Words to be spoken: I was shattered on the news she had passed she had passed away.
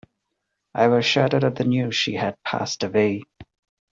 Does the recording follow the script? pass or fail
fail